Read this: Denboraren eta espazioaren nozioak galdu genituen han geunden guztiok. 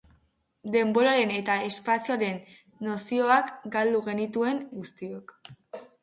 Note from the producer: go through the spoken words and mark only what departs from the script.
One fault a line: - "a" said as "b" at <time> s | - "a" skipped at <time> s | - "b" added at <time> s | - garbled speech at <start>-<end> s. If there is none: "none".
- "han geunden" skipped at 4.6 s